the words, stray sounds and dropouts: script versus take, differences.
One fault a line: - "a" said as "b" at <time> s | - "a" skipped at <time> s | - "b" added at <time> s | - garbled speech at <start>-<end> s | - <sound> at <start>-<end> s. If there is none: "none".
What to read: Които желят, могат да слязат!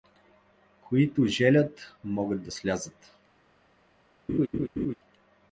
- laugh at 4.3-4.9 s